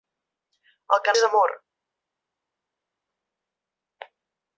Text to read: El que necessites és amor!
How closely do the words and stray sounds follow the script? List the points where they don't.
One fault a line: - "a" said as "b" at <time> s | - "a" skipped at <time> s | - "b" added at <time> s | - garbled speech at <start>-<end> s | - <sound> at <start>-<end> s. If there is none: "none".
- "necessites" skipped at 1.1 s